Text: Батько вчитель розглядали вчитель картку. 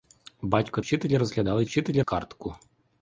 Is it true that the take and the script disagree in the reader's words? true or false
false